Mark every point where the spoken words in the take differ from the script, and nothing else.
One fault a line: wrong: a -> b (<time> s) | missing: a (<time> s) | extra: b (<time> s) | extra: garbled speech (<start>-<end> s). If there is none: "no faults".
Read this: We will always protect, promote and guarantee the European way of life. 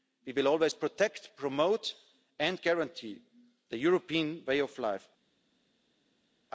no faults